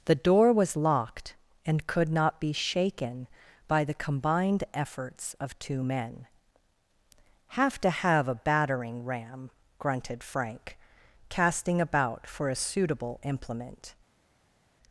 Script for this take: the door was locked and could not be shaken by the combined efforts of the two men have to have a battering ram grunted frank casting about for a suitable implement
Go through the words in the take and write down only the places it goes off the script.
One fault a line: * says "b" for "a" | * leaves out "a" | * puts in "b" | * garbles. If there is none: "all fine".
* leaves out "the"